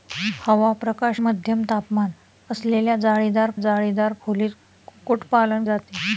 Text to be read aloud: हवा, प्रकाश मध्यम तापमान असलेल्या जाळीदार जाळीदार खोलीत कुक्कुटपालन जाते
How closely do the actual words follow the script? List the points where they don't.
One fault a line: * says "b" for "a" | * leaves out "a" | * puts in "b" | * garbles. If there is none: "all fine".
all fine